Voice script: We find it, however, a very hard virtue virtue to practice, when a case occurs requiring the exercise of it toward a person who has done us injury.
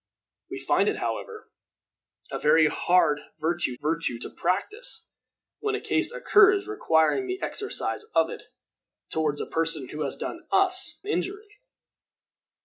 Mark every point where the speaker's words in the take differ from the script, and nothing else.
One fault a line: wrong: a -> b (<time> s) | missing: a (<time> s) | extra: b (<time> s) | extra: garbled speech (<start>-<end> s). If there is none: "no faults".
no faults